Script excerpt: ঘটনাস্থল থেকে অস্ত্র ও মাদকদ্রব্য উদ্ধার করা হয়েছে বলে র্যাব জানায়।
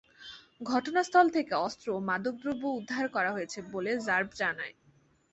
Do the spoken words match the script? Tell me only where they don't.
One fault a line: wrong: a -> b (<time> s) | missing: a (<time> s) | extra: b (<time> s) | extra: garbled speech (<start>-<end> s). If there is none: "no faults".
no faults